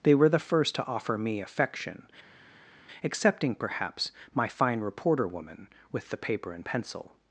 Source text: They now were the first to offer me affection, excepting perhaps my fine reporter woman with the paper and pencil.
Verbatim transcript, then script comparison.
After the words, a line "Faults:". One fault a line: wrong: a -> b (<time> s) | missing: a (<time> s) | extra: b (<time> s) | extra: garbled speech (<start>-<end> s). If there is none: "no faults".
They were the first to offer me affection, excepting perhaps my fine reporter woman with the paper and pencil.
Faults:
missing: now (0.1 s)